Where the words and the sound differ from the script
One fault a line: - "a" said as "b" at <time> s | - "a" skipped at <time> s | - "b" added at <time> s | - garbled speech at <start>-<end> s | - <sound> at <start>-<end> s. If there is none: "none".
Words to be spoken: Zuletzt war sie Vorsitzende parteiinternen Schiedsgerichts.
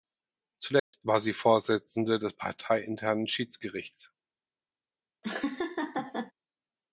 - dropout at 0.8-0.9 s
- "des" added at 2.2 s
- laugh at 5.2-6.3 s